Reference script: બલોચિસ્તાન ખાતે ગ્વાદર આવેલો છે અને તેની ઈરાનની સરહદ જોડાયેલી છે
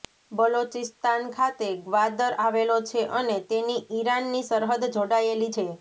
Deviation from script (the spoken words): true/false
false